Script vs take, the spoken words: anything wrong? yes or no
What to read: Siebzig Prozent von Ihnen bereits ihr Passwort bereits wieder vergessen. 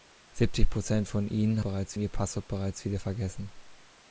no